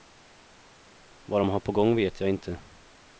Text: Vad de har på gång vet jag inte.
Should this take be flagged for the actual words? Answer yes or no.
no